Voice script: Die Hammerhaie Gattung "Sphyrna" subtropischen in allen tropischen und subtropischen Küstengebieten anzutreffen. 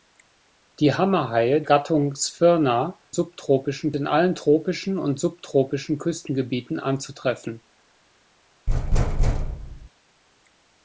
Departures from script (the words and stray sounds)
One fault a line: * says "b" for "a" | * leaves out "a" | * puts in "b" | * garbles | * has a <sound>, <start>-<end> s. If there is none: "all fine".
* has a thud, 8.7-9.9 s